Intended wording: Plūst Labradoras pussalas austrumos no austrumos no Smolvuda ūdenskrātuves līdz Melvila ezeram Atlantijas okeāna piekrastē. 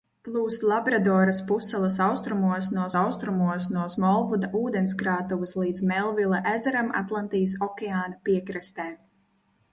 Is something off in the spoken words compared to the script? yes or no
no